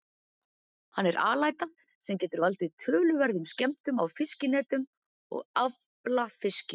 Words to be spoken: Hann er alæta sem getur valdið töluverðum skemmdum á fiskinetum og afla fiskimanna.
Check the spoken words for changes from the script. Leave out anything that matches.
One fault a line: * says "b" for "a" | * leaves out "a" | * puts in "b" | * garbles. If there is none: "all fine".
all fine